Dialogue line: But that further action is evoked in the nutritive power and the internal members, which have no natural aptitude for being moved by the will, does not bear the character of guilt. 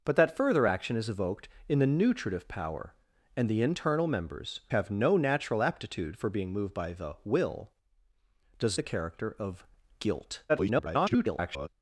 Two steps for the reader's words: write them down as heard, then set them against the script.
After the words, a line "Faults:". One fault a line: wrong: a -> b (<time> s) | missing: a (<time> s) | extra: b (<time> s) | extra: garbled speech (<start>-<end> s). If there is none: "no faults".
But that further action is evoked in the nutritive power and the internal members, have no natural aptitude for being moved by the will, does the character of guilt. [garbled]
Faults:
missing: which (4.6 s)
missing: not bear (8.8 s)
extra: garbled speech (10.5-11.7 s)